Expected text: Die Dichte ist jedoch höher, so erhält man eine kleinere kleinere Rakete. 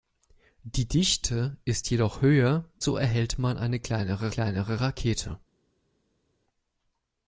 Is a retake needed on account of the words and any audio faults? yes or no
no